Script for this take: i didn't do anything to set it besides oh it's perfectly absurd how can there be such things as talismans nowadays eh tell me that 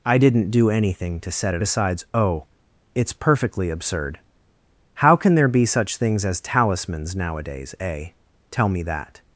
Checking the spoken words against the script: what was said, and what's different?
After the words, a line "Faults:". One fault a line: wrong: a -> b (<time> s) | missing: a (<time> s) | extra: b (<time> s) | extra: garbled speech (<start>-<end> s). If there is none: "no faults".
i didn't do anything to set it besides oh it's perfectly absurd how can there be such things as talismans nowadays eh tell me that
Faults:
no faults